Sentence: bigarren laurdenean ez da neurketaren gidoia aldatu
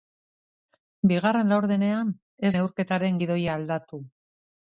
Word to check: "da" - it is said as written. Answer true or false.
false